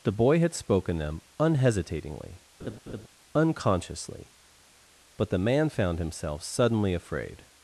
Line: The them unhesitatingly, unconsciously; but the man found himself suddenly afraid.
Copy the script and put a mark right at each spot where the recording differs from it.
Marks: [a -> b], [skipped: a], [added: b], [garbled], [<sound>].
The [added: boy had spoken] them unhesitatingly, [laugh] unconsciously; but the man found himself suddenly afraid.